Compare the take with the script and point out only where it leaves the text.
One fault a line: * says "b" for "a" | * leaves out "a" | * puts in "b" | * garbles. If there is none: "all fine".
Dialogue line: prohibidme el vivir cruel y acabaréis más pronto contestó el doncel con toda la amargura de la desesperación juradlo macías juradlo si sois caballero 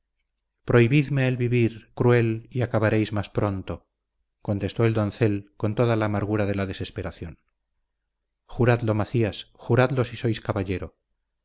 all fine